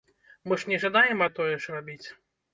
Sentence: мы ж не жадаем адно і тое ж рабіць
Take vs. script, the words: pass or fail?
fail